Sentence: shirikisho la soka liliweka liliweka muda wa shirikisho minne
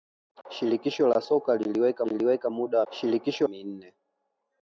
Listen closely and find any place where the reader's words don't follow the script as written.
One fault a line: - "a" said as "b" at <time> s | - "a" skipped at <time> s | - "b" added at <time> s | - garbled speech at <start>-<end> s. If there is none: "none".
none